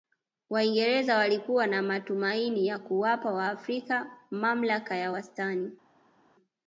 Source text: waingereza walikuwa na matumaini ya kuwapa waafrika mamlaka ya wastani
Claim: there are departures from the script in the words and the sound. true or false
false